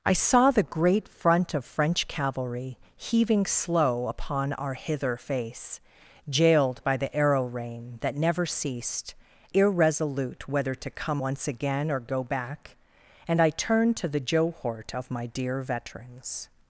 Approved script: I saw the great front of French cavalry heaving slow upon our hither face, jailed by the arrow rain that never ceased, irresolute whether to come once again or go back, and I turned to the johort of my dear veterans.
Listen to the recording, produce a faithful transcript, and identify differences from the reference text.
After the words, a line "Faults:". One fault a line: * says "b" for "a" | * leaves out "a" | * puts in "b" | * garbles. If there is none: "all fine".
I saw the great front of French cavalry heaving slow upon our hither face, jailed by the arrow rain that never ceased, irresolute whether to come once again or go back, and I turned to the johort of my dear veterans.
Faults:
all fine